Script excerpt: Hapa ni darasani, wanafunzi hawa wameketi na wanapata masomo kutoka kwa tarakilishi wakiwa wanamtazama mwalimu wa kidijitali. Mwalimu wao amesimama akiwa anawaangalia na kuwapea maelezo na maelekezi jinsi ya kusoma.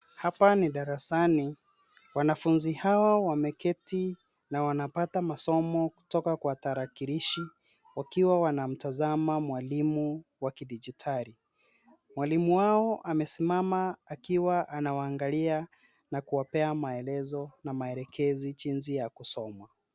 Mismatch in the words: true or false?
false